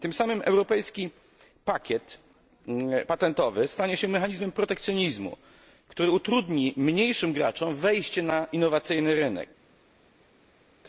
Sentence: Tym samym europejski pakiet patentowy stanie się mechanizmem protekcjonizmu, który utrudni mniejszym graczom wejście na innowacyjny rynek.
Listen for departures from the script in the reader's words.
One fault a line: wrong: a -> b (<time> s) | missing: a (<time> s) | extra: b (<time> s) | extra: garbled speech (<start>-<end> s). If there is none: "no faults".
no faults